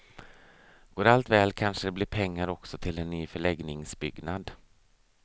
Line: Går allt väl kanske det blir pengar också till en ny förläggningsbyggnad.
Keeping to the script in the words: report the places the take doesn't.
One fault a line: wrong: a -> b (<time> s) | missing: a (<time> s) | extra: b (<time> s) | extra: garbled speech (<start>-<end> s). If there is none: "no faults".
no faults